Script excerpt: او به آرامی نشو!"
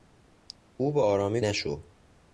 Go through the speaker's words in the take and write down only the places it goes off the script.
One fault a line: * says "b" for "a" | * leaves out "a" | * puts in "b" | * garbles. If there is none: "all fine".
all fine